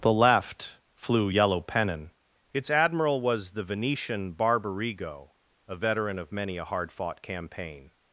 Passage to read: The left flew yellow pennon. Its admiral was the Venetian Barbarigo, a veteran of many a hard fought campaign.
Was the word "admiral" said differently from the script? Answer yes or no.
no